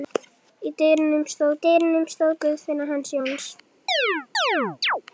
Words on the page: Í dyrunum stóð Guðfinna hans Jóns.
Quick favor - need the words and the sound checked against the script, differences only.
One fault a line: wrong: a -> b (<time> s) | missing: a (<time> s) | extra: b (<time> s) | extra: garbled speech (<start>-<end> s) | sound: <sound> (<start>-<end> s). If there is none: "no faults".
extra: dyrunum stóð (1.7 s)
sound: chirp (3.9-5.0 s)